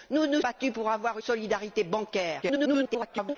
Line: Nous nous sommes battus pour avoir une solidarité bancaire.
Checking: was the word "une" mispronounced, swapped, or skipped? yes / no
yes